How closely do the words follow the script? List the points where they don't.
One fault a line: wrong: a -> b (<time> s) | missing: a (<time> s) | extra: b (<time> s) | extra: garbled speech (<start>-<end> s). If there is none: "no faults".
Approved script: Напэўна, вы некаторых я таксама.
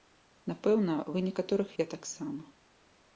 no faults